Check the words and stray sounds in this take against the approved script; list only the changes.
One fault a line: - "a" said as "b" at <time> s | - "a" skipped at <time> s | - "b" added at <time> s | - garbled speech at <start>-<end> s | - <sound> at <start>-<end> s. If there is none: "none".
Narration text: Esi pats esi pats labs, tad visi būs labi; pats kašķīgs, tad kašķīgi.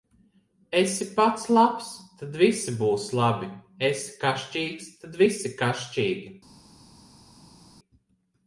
- "esi pats" skipped at 1.4 s
- "pats" said as "esi" at 3.9 s
- "visi" added at 5.2 s